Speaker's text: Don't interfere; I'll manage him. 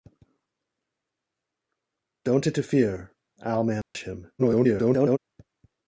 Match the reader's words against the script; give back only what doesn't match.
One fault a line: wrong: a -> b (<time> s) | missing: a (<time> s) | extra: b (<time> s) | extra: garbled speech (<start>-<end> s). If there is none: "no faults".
extra: garbled speech (4.4-5.2 s)